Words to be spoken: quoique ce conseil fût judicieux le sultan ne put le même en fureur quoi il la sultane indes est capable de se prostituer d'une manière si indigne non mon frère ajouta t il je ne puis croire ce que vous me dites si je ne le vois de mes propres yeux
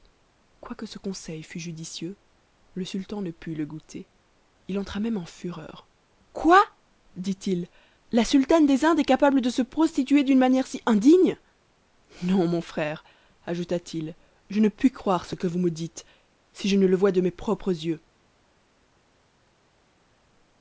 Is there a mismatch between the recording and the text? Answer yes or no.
yes